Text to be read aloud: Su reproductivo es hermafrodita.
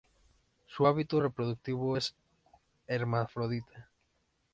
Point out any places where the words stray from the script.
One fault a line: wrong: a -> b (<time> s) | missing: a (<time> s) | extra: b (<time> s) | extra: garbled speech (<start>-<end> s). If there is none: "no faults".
extra: hábito (0.8 s)